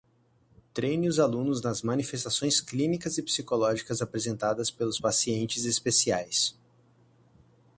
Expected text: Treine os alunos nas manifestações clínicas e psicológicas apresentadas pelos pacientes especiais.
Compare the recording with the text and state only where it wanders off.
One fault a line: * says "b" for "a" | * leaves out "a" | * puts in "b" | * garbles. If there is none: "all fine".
all fine